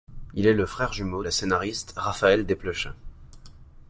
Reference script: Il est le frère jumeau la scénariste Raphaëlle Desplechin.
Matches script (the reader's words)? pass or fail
pass